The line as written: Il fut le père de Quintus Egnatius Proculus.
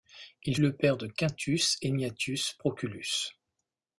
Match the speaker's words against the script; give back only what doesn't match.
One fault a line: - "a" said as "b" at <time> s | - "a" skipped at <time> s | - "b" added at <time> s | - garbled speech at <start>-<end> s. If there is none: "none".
- "fut" skipped at 0.6 s